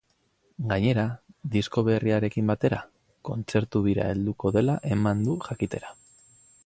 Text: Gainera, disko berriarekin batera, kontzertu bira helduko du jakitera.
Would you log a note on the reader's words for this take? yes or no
yes